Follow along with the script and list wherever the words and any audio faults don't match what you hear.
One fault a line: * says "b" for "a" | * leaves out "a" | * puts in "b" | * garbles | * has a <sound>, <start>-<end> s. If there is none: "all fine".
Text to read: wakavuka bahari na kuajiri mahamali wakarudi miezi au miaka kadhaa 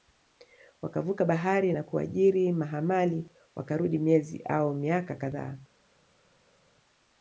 all fine